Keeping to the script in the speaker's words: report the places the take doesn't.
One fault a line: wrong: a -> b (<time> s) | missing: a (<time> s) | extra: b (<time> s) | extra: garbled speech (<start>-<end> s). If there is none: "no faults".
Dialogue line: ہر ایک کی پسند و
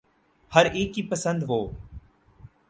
no faults